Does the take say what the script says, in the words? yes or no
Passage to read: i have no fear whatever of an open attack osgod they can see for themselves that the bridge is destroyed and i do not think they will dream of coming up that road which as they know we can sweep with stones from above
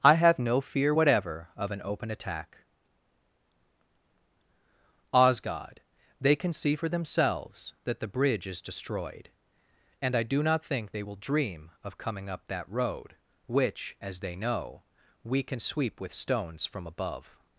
yes